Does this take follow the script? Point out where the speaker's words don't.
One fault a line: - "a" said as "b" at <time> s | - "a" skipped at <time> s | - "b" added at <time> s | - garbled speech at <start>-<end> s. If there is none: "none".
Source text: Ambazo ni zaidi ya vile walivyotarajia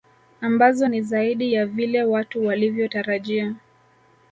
- "watu" added at 2.0 s